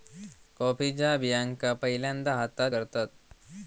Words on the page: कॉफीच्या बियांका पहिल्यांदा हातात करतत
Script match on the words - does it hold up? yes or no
yes